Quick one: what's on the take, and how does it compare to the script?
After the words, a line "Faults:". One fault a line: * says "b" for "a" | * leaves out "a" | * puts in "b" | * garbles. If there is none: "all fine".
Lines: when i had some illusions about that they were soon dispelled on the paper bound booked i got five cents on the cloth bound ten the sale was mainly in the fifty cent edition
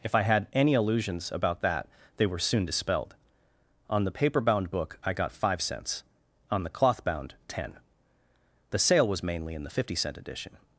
if i had any illusions about that they were soon dispelled on the paper bound book i got five cents on the cloth bound ten the sale was mainly in the fifty cent edition
Faults:
* says "if" for "when"
* says "any" for "some"
* says "book" for "booked"